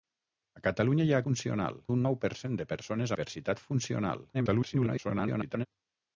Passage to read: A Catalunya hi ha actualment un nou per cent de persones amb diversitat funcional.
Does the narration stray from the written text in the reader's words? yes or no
yes